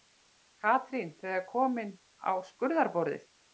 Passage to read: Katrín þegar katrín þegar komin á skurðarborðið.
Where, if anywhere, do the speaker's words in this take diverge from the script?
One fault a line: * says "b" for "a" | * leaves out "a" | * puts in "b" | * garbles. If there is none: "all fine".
* leaves out "katrín þegar"